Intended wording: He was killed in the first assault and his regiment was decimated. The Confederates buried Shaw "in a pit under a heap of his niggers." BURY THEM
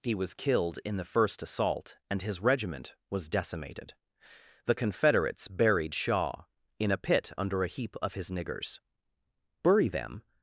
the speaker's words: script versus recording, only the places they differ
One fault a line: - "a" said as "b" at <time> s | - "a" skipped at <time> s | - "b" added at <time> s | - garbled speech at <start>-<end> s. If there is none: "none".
none